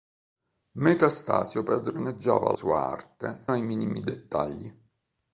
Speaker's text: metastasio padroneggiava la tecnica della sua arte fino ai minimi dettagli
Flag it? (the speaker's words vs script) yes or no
yes